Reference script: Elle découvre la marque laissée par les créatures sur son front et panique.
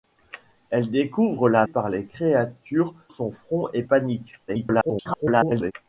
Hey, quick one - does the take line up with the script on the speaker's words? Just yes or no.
no